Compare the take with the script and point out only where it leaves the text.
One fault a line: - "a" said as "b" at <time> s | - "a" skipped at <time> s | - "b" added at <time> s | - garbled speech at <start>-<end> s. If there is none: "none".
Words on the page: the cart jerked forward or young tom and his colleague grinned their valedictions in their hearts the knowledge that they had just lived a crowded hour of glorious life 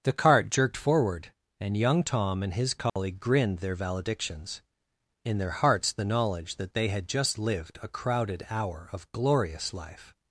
- "or" said as "and" at 1.6 s